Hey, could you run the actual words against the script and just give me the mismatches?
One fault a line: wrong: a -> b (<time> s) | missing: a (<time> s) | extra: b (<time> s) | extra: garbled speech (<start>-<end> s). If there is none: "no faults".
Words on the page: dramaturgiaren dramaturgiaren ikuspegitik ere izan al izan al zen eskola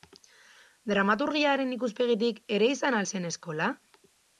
missing: dramaturgiaren (1.8 s)
missing: izan al (3.1 s)